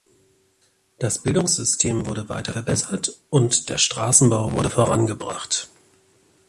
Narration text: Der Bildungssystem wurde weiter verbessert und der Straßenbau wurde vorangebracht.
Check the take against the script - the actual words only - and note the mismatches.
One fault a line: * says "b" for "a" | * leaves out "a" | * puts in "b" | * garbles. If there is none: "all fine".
* says "Das" for "Der"